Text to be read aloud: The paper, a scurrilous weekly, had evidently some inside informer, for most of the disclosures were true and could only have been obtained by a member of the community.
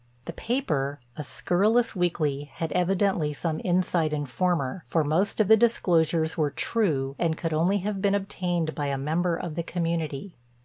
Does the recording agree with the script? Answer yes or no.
yes